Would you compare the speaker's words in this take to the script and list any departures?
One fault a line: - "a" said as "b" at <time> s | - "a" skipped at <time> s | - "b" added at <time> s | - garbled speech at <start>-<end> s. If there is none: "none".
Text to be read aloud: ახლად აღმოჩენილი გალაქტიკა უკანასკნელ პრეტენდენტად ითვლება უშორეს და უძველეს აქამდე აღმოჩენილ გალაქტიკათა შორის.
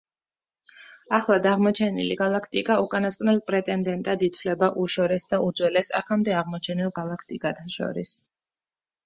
none